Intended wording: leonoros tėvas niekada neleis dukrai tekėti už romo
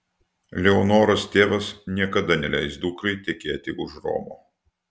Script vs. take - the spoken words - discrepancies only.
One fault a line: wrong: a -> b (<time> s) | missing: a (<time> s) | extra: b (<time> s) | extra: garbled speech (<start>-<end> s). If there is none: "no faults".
no faults